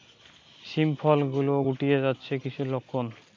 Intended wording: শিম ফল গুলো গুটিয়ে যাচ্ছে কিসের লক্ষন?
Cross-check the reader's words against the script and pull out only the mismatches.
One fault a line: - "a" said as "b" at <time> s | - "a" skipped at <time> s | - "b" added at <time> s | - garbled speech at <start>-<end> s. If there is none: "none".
none